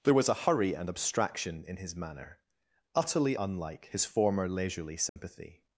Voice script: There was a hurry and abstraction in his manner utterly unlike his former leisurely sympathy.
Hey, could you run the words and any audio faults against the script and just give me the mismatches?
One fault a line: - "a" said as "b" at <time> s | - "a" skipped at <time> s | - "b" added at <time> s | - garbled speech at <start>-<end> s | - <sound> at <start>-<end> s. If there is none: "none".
- dropout at 5.1-5.2 s